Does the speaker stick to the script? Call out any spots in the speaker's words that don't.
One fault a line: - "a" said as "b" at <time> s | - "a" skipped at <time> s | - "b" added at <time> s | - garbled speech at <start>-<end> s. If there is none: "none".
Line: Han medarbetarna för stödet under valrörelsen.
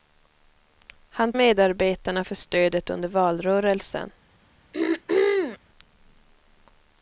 none